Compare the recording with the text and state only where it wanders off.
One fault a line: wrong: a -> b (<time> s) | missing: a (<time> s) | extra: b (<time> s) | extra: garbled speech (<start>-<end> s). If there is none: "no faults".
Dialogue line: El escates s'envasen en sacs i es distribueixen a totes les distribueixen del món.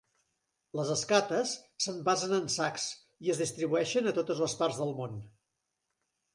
wrong: El -> Les (0.8 s)
wrong: distribueixen -> parts (4.6 s)